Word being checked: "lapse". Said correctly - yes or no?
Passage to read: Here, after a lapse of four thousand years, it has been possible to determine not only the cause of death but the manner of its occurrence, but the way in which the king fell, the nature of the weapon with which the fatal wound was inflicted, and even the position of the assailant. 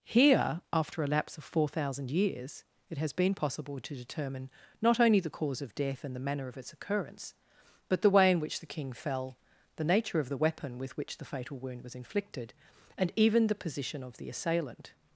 yes